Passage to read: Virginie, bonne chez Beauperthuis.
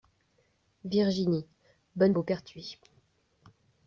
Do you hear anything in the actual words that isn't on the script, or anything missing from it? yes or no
yes